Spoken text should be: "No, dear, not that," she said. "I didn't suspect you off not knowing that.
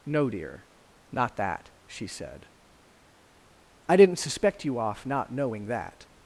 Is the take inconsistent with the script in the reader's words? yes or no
no